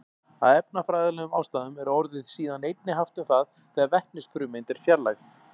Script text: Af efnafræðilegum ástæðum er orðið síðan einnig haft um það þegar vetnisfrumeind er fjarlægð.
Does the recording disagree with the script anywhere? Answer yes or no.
no